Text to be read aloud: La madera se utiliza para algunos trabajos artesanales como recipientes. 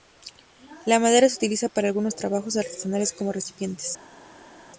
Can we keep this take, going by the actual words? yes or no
yes